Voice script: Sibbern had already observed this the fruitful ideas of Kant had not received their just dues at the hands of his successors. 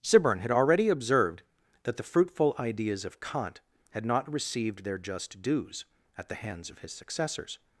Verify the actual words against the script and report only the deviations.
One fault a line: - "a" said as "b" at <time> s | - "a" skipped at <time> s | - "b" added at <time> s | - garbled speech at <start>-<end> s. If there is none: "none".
- "this" said as "that" at 1.8 s